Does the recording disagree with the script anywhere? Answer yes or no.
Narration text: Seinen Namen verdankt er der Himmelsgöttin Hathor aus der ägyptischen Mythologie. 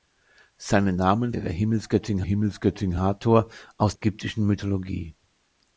yes